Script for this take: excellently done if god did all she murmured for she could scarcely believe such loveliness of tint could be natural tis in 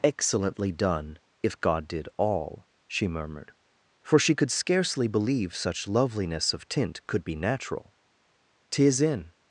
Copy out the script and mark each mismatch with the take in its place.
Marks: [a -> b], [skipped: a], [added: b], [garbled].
excellently done if god did all she murmured for she could scarcely believe such loveliness of tint could be natural tis in